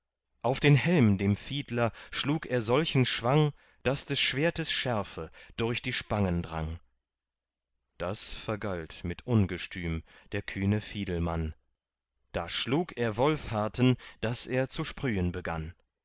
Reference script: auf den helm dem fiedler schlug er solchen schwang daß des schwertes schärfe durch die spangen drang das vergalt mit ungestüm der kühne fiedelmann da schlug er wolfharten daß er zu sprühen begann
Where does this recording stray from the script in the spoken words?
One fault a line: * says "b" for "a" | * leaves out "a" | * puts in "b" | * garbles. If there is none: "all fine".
all fine